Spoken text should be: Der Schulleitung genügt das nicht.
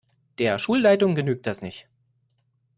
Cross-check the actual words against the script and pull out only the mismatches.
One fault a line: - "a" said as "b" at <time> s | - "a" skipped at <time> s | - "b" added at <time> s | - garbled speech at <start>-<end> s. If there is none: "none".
none